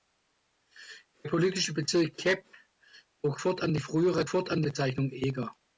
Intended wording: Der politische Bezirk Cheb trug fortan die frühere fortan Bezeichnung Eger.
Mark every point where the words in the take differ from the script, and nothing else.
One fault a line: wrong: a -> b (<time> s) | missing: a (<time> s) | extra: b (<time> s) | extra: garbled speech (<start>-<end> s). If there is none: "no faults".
no faults